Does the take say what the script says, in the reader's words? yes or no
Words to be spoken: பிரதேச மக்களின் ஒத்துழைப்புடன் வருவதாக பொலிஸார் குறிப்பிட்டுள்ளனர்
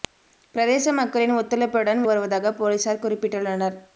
yes